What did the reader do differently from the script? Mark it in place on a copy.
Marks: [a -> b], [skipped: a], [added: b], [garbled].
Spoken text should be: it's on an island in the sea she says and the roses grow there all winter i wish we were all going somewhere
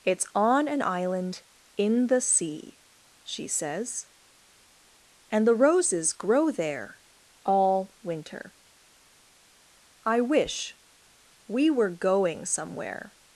it's on an island in the sea she says and the roses grow there all winter i wish we were [skipped: all] going somewhere